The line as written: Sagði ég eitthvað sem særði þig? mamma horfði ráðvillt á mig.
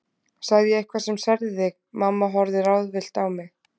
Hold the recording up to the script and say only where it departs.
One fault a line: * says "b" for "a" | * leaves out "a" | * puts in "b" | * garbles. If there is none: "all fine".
all fine